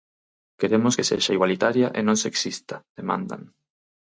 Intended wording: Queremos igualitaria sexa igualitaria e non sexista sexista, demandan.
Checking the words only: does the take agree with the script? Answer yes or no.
no